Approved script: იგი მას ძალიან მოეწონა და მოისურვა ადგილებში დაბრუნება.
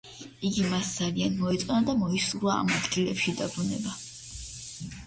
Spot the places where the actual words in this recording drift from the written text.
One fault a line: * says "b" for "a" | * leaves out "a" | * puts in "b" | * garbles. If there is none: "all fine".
* puts in "ამ"